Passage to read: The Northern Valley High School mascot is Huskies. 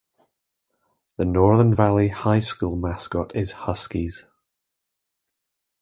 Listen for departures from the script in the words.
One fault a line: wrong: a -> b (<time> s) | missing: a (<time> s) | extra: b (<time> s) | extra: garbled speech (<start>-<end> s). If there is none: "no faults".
no faults